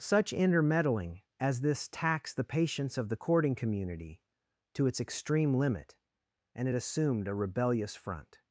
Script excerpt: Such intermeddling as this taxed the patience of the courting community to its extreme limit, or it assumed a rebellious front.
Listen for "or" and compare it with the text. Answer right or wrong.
wrong